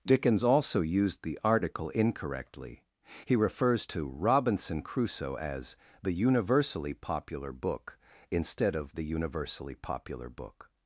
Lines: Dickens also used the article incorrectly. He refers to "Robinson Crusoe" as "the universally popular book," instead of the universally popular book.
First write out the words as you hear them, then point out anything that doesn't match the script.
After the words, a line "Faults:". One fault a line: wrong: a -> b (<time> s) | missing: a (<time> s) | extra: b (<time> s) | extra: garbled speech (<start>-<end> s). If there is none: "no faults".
Dickens also used the article incorrectly. He refers to "Robinson Crusoe" as "the universally popular book," instead of the universally popular book.
Faults:
no faults